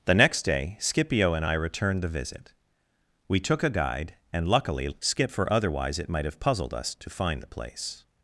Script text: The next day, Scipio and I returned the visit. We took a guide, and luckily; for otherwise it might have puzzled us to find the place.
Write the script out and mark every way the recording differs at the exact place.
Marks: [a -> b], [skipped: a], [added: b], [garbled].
The next day, Scipio and I returned the visit. We took a guide, and luckily; [added: skip] for otherwise it might have puzzled us to find the place.